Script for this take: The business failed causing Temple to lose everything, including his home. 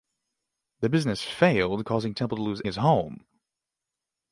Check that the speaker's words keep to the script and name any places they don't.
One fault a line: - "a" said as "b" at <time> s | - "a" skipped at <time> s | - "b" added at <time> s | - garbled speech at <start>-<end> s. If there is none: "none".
- "everything including" skipped at 2.6 s